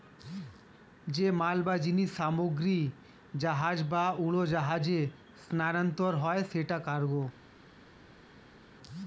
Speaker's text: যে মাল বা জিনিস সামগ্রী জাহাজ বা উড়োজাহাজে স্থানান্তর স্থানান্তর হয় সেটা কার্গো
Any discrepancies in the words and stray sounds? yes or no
yes